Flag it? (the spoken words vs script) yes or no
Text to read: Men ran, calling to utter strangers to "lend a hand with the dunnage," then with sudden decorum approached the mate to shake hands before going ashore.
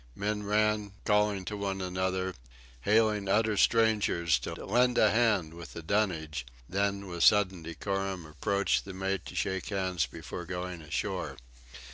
yes